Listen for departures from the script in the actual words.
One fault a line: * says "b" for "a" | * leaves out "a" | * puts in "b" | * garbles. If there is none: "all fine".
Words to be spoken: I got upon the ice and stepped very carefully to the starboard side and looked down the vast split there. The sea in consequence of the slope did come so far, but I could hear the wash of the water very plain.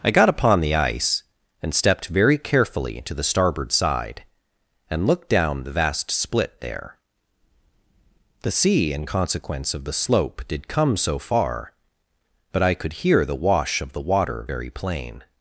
all fine